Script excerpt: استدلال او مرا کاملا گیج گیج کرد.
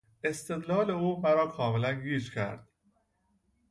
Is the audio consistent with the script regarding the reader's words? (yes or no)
no